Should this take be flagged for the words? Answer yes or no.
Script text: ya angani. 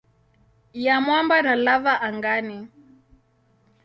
yes